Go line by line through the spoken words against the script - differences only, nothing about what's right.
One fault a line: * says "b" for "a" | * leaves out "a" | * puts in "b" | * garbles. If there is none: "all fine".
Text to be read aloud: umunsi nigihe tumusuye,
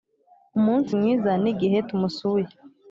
* puts in "mwiza"